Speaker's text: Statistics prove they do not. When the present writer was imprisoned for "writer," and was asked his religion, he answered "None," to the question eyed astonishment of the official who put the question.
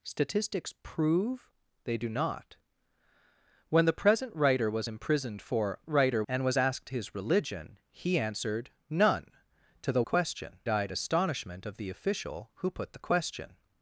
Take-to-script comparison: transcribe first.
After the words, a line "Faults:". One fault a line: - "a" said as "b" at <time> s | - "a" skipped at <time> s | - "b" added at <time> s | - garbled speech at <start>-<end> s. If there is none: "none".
Statistics prove they do not. When the present writer was imprisoned for "writer," and was asked his religion, he answered "None," to the question eyed astonishment of the official who put the question.
Faults:
none